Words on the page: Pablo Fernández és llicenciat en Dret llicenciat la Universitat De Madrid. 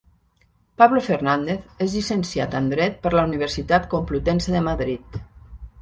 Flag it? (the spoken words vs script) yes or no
yes